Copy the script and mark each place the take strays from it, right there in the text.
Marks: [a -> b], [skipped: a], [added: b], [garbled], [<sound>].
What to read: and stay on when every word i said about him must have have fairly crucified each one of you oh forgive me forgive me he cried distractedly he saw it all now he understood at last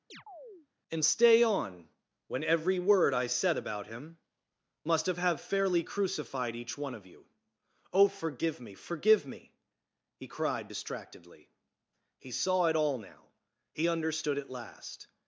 [chirp] and stay on when every word i said about him must have have fairly crucified each one of you oh forgive me forgive me he cried distractedly he saw it all now he understood at last